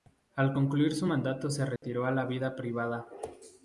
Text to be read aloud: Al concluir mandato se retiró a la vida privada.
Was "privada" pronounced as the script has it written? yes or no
yes